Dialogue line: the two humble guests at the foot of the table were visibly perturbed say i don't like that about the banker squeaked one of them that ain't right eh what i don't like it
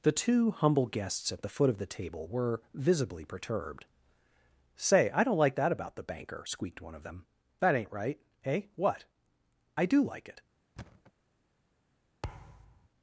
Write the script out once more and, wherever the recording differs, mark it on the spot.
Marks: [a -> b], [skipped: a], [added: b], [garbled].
the two humble guests at the foot of the table were visibly perturbed say i don't like that about the banker squeaked one of them that ain't right eh what i [don't -> do] like it